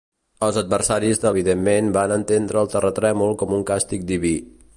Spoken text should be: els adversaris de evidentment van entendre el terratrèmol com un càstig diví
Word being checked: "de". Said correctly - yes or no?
yes